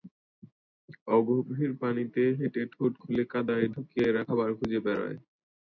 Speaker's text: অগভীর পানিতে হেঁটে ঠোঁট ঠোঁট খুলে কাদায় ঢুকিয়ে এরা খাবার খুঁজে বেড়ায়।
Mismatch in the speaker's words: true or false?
true